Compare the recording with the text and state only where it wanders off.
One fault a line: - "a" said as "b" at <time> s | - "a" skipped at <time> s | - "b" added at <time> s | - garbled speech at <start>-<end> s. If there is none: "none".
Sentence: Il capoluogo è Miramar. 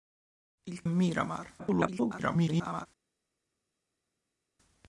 - "capoluogo" skipped at 0.9 s
- garbled speech at 1.6-2.9 s